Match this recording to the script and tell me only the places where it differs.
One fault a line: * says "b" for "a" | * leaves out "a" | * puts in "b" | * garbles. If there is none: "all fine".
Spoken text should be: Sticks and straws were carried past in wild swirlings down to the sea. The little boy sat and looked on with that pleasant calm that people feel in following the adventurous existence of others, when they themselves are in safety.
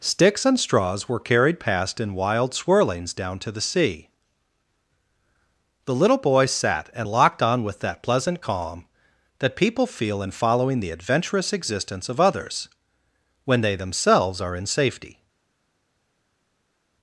* says "locked" for "looked"